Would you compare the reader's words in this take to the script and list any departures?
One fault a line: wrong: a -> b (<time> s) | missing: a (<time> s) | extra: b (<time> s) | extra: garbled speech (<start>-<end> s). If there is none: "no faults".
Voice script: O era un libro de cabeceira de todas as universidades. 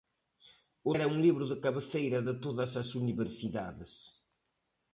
no faults